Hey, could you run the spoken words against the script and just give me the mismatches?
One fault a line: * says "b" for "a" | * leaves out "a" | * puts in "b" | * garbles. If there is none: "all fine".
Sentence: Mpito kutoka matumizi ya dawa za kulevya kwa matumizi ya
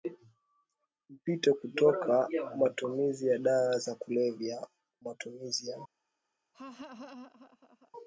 * leaves out "kwa"